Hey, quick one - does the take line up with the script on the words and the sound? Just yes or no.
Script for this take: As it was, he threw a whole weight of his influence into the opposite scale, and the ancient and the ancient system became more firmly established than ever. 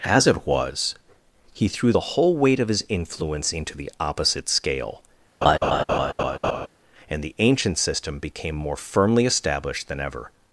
no